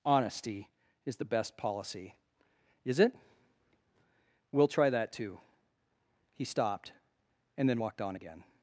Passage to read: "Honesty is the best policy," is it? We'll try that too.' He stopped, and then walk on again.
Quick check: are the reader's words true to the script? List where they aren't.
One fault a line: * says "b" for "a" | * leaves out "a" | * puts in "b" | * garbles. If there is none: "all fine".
* says "walked" for "walk"